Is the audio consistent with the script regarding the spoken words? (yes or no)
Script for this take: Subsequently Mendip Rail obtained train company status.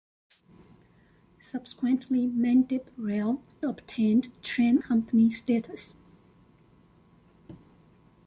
yes